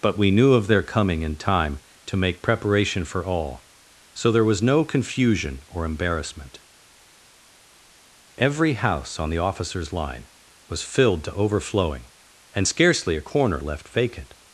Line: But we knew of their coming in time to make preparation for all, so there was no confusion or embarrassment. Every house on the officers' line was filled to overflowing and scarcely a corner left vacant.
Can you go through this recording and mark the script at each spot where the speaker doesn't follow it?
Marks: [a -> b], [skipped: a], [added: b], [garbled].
But we knew of their coming in time to make preparation for all, so there was no confusion or embarrassment. Every house on the officers' line was filled to overflowing and scarcely a corner left vacant.